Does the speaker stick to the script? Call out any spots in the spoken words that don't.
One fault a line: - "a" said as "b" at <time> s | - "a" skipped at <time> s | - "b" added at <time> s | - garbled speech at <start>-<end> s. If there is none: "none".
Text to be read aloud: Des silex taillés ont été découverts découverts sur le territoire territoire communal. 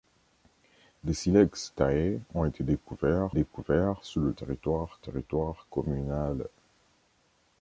none